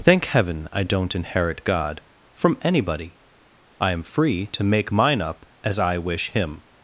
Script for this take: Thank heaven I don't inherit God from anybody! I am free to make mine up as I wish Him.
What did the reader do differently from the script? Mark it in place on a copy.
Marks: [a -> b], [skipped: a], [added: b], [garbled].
Thank heaven I don't inherit God from anybody! I am free to make mine up as I wish Him.